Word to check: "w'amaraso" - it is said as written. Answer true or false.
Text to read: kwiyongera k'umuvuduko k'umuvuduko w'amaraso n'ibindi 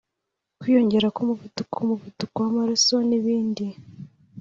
true